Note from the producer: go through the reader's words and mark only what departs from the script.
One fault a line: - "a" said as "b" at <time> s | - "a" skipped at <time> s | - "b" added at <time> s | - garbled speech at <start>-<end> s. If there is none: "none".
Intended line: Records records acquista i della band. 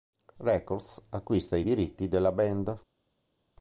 - "records" skipped at 1.1 s
- "diritti" added at 1.6 s